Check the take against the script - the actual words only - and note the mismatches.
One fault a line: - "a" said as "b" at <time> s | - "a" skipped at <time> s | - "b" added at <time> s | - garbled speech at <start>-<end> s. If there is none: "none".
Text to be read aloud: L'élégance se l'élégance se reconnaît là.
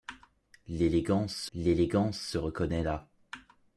none